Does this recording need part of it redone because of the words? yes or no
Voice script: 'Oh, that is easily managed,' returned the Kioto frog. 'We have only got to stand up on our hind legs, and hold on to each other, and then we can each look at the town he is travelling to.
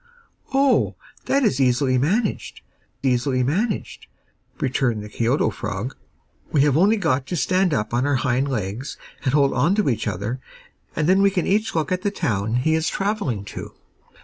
yes